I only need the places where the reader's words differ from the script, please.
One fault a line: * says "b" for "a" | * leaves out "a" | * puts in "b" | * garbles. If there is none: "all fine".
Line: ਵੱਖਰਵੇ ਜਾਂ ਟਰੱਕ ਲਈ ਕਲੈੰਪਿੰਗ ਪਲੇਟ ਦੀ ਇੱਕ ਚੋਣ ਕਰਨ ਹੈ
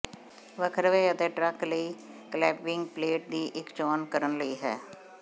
* says "ਅਤੇ" for "ਜਾਂ"
* puts in "ਲਈ"